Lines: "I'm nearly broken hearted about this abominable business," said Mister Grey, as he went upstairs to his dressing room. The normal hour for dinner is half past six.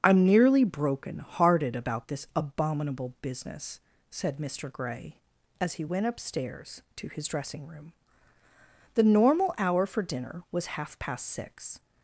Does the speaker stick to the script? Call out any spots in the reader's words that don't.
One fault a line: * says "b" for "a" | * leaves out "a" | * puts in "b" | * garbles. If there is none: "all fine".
* says "was" for "is"